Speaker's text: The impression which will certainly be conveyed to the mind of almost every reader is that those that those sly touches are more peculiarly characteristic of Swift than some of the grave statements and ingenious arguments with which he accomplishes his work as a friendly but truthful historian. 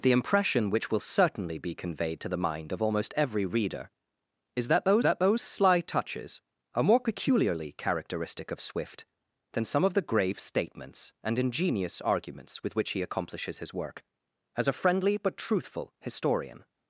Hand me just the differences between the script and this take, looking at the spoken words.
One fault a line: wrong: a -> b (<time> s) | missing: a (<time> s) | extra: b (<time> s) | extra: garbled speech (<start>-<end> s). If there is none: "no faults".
no faults